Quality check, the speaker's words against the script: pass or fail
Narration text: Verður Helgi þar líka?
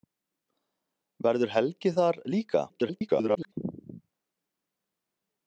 fail